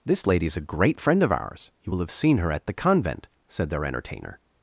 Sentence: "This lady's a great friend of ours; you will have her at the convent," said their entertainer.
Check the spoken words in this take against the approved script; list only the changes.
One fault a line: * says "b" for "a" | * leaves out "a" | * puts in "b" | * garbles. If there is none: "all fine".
* puts in "seen"